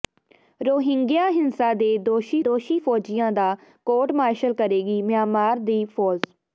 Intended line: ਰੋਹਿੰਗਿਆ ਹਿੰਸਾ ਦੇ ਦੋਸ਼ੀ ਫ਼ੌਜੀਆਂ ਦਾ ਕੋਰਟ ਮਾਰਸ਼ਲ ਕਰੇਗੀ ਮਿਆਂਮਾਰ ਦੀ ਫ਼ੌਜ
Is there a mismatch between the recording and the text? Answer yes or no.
yes